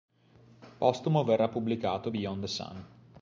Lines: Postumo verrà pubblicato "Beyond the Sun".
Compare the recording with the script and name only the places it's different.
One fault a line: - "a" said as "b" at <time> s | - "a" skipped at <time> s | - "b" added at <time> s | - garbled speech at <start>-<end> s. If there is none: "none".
none